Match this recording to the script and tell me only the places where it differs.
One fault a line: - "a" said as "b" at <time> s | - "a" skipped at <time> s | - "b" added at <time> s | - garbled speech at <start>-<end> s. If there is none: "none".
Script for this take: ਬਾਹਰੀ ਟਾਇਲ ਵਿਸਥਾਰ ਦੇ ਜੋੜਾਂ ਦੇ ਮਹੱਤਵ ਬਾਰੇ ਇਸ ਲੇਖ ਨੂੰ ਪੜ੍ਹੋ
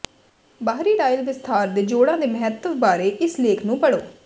none